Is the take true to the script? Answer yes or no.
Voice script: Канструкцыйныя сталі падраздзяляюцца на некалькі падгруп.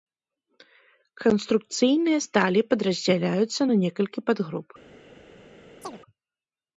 yes